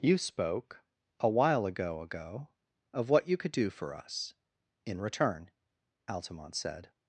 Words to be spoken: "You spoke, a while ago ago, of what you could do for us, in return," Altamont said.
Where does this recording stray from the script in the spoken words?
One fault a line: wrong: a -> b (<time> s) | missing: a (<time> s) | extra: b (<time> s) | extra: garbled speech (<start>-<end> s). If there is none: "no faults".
no faults